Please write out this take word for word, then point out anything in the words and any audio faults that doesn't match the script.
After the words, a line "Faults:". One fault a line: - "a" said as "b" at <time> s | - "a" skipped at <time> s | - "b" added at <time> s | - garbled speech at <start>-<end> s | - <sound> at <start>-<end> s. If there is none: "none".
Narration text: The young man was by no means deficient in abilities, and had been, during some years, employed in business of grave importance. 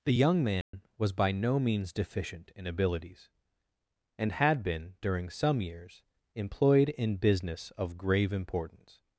The young man was by no means deficient in abilities, and had been, during some years, employed in business of grave importance.
Faults:
- dropout at 0.6-0.7 s